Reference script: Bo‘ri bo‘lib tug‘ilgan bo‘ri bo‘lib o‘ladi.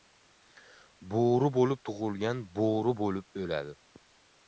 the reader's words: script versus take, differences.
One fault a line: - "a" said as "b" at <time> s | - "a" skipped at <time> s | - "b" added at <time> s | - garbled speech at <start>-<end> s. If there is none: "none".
none